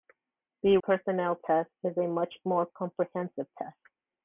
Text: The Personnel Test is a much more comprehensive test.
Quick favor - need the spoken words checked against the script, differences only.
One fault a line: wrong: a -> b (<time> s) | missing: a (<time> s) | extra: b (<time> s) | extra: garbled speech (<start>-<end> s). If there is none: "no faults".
no faults